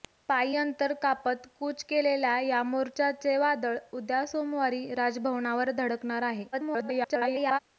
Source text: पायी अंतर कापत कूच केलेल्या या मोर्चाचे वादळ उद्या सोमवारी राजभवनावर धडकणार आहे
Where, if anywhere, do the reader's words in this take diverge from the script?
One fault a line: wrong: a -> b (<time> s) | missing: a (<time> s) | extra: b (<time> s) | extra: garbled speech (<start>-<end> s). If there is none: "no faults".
extra: garbled speech (6.5-7.6 s)